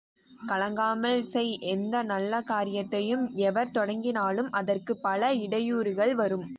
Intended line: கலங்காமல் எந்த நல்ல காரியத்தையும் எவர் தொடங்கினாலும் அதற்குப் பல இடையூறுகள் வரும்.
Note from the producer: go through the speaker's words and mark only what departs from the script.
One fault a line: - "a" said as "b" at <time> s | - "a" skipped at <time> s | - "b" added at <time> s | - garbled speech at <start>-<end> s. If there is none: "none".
- "செய்" added at 1.2 s